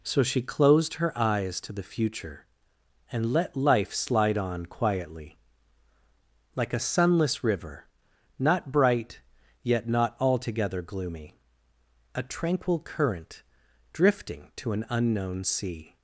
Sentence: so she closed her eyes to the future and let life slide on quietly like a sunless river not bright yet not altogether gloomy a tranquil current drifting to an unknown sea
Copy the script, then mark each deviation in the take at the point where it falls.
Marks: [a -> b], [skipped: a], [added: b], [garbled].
so she closed her eyes to the future and let life slide on quietly like a sunless river not bright yet not altogether gloomy a tranquil current drifting to an unknown sea